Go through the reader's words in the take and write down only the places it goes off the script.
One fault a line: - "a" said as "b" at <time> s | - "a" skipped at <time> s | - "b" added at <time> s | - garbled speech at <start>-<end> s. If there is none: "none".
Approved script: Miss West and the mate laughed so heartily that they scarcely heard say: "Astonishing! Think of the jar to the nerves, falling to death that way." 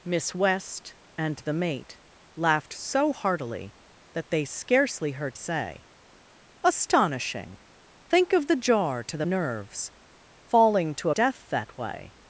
none